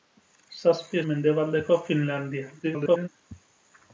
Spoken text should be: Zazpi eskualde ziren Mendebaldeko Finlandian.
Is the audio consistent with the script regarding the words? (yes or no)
no